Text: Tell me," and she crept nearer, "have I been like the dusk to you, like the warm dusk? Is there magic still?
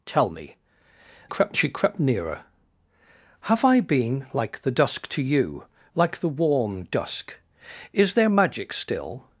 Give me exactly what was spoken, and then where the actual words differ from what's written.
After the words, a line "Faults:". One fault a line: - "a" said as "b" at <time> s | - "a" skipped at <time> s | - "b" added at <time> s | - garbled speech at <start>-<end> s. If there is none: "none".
Tell me," crept she crept nearer, "have I been like the dusk to you, like the warm dusk? Is there magic still?
Faults:
- "and" said as "crept" at 1.3 s